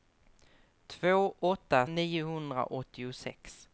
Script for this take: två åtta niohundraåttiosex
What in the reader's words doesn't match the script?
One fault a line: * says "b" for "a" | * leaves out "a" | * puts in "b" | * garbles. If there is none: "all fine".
all fine